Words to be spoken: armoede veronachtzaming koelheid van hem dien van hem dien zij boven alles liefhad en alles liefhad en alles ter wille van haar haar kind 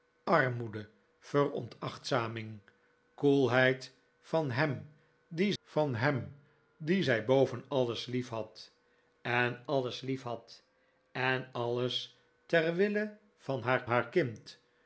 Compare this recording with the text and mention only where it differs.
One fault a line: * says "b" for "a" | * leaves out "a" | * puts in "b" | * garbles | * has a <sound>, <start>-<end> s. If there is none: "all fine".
all fine